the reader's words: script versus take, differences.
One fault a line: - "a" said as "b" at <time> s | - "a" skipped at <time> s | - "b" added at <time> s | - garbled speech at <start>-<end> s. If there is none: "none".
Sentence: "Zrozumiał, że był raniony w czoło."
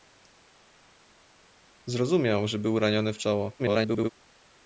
- garbled speech at 3.6-4.1 s